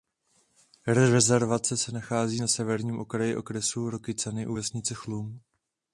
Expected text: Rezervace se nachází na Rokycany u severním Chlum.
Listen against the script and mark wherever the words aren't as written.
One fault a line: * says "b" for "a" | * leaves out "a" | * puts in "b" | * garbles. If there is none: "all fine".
* puts in "severním okraji okresu"
* says "vesnice" for "severním"